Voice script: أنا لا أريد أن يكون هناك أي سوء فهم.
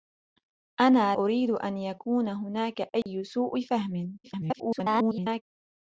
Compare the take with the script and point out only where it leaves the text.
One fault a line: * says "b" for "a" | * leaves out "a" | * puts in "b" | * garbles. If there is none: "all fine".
* leaves out "لا"
* garbles